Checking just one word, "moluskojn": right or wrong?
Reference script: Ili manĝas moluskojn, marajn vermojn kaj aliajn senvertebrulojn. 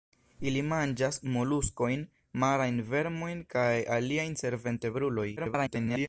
right